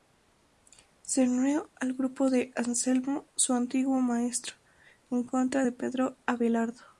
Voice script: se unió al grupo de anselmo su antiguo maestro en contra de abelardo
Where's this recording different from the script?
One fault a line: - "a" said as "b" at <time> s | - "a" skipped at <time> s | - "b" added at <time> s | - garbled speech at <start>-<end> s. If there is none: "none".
- "pedro" added at 5.7 s